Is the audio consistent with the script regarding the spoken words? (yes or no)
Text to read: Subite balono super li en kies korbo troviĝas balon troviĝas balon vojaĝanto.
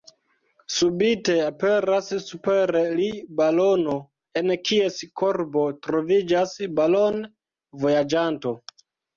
no